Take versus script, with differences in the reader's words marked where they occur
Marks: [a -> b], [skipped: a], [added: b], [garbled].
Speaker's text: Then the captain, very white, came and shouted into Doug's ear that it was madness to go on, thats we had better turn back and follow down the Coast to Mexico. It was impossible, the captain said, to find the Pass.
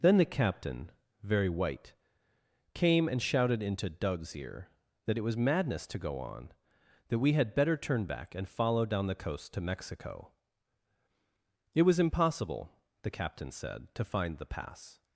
Then the captain, very white, came and shouted into Doug's ear that it was madness to go on, [thats -> that] we had better turn back and follow down the Coast to Mexico. It was impossible, the captain said, to find the Pass.